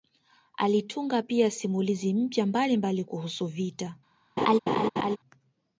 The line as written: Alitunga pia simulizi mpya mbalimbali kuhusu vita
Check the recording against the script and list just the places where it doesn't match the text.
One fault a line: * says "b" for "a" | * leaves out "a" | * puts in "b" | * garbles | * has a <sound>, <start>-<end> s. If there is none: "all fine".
* has a laugh, 4.4-5.2 s